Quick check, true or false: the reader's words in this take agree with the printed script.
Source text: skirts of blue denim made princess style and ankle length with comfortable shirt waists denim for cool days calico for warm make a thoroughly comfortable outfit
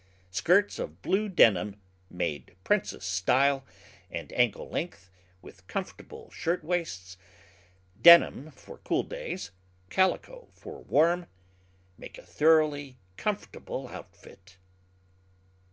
true